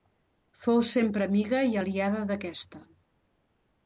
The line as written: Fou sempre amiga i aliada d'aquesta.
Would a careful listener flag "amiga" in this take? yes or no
no